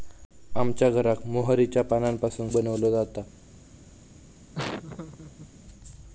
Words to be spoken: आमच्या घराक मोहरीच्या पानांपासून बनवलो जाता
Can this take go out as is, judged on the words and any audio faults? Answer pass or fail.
fail